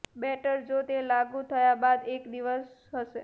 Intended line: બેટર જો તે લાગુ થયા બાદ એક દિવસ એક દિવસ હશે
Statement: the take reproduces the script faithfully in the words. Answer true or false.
false